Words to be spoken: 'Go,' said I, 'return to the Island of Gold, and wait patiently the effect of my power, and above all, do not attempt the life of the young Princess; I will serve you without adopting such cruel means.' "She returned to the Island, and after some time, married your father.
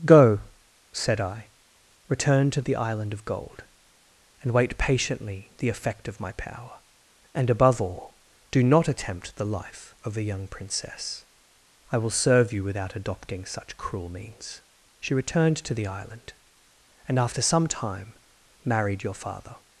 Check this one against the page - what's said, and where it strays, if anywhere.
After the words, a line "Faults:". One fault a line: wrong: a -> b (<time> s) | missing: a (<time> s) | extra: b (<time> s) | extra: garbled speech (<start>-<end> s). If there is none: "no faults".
'Go,' said I, 'return to the Island of Gold, and wait patiently the effect of my power, and above all, do not attempt the life of a young Princess; I will serve you without adopting such cruel means.' "She returned to the Island, and after some time, married your father.
Faults:
wrong: the -> a (10.2 s)